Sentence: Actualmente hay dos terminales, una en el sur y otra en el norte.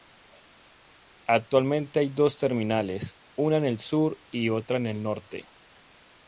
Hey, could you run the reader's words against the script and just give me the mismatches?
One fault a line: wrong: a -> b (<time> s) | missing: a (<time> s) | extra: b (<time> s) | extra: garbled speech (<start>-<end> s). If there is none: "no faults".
no faults